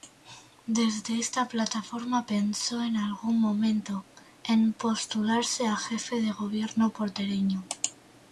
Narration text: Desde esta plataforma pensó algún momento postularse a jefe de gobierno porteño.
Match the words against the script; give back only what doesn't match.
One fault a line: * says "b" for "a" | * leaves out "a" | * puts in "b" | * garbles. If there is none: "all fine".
* puts in "en"
* puts in "en"